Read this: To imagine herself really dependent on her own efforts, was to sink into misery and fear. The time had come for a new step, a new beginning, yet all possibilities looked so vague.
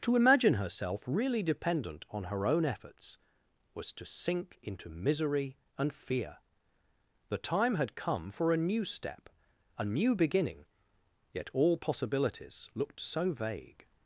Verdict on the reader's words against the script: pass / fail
pass